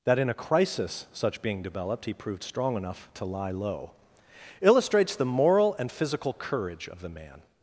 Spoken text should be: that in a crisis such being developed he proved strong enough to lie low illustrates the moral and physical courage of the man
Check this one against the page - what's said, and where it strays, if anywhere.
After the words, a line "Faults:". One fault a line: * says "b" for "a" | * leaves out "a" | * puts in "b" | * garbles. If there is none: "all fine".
that in a crisis such being developed he proved strong enough to lie low illustrates the moral and physical courage of the man
Faults:
all fine